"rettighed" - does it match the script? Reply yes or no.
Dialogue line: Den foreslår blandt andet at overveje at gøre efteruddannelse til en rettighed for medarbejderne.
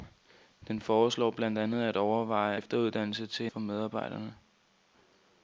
no